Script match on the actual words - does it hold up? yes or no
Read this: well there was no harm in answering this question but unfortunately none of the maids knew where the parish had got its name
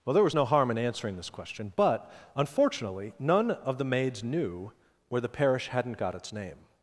no